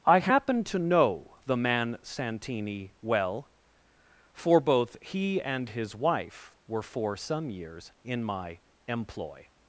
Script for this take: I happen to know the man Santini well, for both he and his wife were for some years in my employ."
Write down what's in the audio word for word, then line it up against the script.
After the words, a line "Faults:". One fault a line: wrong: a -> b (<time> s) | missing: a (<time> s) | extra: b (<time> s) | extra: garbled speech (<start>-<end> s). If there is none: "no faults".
I happen to know the man Santini well, for both he and his wife were for some years in my employ."
Faults:
no faults